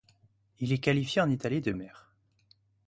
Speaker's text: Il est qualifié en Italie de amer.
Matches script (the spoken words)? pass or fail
pass